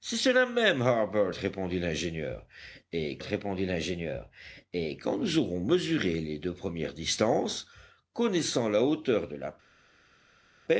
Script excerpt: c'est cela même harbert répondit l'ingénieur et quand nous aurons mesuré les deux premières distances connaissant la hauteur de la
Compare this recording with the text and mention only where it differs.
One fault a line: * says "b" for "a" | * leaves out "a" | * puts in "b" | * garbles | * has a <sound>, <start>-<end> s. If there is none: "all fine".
* puts in "répondit l'ingénieur et"